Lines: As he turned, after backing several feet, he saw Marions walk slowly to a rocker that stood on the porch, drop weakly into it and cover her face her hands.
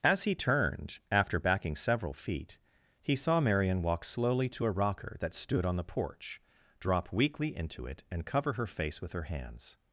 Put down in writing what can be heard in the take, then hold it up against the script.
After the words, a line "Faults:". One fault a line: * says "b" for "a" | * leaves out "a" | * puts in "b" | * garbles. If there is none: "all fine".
As he turned, after backing several feet, he saw Marion walk slowly to a rocker that stood on the porch, drop weakly into it and cover her face with her hands.
Faults:
* says "Marion" for "Marions"
* puts in "with"